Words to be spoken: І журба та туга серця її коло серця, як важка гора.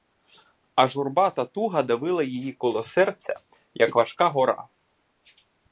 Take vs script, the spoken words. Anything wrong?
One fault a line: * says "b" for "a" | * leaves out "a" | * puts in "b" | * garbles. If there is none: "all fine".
* says "А" for "І"
* says "давила" for "серця"